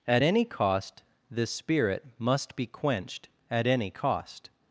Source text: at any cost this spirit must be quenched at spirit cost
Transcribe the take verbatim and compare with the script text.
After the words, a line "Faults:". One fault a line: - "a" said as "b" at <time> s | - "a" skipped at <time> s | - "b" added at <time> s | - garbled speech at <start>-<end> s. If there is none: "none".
at any cost this spirit must be quenched at any cost
Faults:
- "spirit" said as "any" at 3.7 s